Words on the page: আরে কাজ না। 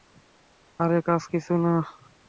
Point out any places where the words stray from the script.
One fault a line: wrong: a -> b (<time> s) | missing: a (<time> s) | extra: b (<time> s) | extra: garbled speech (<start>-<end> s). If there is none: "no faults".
extra: কিছু (1.3 s)